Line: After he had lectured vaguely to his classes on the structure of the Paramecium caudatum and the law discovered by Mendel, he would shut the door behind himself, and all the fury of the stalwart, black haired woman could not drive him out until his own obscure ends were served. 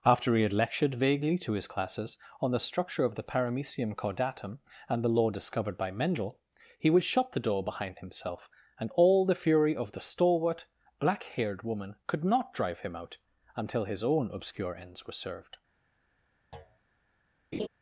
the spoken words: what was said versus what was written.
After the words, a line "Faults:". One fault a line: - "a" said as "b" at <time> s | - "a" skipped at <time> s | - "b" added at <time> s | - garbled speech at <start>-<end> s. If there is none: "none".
After he had lectured vaguely to his classes on the structure of the Paramecium caudatum and the law discovered by Mendel, he would shut the door behind himself, and all the fury of the stalwart, black haired woman could not drive him out until his own obscure ends were served.
Faults:
none